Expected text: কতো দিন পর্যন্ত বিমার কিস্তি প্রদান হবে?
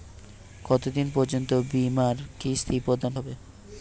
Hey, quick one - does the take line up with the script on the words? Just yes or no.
yes